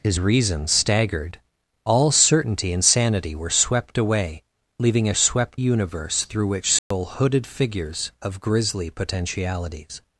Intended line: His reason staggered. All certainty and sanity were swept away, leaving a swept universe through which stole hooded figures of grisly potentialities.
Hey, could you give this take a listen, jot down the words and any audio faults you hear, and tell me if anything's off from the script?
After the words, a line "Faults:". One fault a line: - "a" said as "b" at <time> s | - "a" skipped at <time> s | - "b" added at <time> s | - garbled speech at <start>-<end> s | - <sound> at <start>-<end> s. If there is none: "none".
His reason staggered. All certainty and sanity were swept away, leaving a swept universe through which stole hooded figures of grisly potentialities.
Faults:
- dropout at 6.8-6.9 s